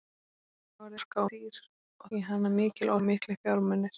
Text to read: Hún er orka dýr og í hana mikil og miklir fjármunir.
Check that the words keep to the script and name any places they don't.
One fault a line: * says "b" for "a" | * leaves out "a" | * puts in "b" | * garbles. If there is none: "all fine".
all fine